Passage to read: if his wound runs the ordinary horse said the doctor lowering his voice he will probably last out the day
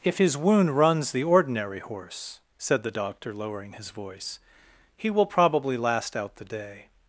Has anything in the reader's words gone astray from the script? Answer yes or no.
no